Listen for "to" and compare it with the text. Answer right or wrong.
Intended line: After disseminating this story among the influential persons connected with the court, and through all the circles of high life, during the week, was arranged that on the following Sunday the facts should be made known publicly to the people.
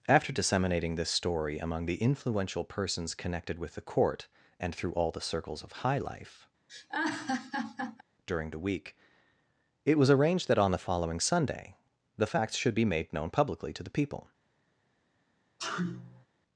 right